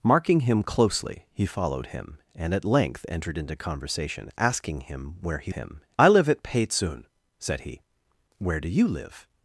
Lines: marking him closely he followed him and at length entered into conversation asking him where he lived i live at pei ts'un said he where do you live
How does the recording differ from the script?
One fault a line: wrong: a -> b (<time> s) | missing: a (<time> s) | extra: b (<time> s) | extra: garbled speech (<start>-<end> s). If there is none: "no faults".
wrong: lived -> him (5.5 s)